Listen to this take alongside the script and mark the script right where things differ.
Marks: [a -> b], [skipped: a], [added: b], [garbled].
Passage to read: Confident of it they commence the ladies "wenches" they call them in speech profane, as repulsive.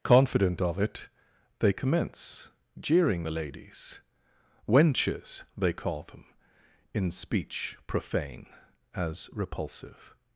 Confident of it they commence [added: jeering] the ladies "wenches" they call them in speech profane, as repulsive.